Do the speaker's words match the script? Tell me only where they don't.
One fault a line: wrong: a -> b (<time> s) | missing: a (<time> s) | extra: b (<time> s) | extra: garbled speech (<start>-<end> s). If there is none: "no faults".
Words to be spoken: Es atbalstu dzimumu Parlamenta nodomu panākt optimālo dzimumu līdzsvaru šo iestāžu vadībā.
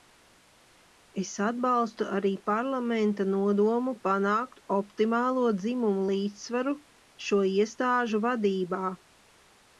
wrong: dzimumu -> arī (2.2 s)